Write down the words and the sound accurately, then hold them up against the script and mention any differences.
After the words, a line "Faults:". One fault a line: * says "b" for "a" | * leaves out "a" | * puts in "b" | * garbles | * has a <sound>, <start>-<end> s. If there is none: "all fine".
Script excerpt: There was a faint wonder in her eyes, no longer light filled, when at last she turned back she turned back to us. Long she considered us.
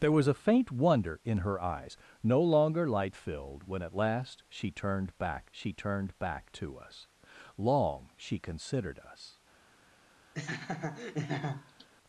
There was a faint wonder in her eyes, no longer light filled, when at last she turned back she turned back to us. Long she considered us.
Faults:
* has a laugh, 10.3-11.9 s